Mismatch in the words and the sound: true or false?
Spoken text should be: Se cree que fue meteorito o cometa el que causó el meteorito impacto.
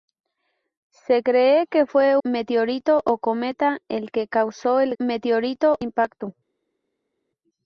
false